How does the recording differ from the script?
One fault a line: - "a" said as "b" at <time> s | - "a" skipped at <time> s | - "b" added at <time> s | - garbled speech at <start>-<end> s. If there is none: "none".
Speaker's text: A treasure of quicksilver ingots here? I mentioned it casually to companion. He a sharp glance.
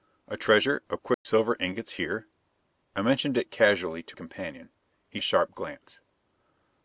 none